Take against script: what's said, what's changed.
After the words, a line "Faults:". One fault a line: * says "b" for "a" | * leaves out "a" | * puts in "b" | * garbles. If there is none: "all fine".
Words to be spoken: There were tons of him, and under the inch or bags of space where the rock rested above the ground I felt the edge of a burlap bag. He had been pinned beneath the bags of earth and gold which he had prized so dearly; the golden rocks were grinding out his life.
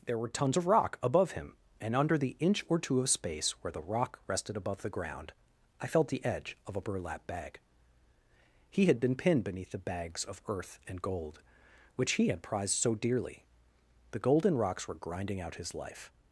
There were tons of rock above him, and under the inch or two of space where the rock rested above the ground I felt the edge of a burlap bag. He had been pinned beneath the bags of earth and gold which he had prized so dearly; the golden rocks were grinding out his life.
Faults:
* puts in "rock above"
* says "two" for "bags"